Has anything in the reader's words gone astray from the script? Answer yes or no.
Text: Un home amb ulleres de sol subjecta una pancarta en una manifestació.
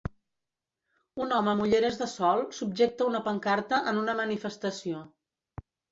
no